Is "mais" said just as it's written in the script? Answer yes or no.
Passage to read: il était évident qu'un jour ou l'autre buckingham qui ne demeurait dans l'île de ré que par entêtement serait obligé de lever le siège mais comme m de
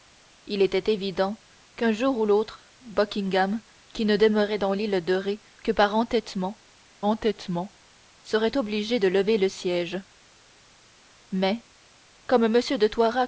yes